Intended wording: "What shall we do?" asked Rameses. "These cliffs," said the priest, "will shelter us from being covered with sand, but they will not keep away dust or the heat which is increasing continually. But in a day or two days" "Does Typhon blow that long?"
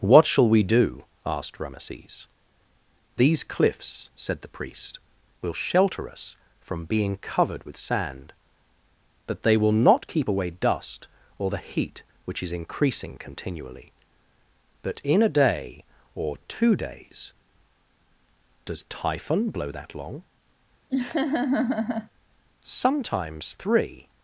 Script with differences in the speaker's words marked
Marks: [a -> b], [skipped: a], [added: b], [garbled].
"What shall we do?" asked Rameses. "These cliffs," said the priest, "will shelter us from being covered with sand, but they will not keep away dust or the heat which is increasing continually. But in a day or two days" "Does Typhon blow that long?" [added: Sometimes three]